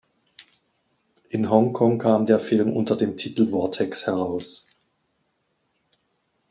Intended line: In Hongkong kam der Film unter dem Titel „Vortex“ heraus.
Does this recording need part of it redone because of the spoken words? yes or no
no